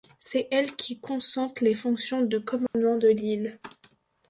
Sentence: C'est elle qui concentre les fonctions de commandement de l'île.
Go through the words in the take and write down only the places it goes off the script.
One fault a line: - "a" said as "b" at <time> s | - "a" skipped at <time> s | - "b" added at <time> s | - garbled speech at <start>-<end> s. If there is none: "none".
none